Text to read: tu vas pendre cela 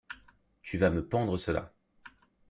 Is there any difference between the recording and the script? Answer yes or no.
yes